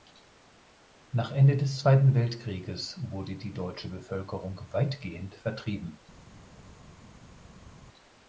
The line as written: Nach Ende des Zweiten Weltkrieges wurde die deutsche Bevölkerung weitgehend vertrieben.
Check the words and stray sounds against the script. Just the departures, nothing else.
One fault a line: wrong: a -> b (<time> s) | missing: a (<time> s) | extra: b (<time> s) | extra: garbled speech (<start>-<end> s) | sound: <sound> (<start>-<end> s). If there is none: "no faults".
no faults